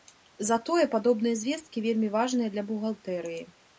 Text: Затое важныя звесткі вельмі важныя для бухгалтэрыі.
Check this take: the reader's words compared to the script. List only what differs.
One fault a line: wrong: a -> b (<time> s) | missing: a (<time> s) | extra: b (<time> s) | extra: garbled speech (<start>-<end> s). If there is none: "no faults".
wrong: важныя -> падобныя (0.9 s)